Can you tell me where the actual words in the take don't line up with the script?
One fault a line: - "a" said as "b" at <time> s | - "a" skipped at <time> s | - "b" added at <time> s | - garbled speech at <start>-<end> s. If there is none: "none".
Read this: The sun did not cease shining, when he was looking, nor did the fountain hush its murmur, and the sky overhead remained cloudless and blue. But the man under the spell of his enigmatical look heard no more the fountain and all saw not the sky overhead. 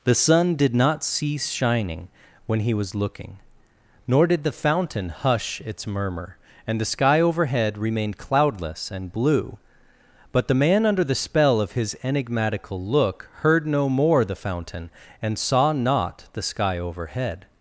- "all" skipped at 15.4 s